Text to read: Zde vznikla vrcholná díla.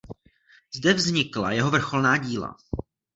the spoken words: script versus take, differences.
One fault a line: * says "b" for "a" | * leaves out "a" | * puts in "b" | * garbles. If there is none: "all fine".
* puts in "jeho"